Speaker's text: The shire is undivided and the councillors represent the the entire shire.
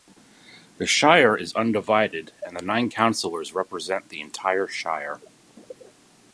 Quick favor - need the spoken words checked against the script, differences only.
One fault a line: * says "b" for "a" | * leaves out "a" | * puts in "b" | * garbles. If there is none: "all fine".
* puts in "nine"
* leaves out "the"